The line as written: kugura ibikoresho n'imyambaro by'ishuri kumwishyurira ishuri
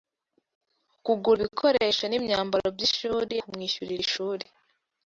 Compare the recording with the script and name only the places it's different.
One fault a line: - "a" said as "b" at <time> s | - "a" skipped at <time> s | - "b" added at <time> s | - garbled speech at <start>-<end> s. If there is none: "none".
none